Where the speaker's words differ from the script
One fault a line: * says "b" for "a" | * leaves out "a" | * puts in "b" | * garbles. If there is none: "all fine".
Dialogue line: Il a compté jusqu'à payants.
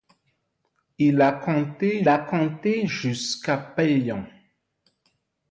* puts in "a compté"